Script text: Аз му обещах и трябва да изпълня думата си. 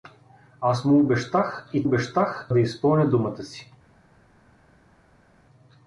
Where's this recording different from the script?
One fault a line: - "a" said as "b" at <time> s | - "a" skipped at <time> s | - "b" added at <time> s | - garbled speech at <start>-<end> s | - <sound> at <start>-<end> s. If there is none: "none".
- "трябва" said as "обещах" at 1.8 s